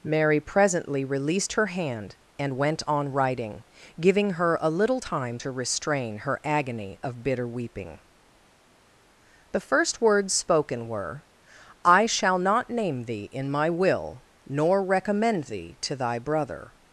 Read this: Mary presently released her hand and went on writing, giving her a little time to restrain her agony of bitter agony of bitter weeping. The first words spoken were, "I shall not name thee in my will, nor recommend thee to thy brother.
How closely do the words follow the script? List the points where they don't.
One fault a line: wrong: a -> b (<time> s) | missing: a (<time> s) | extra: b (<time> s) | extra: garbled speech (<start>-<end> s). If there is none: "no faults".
missing: agony of bitter (7.5 s)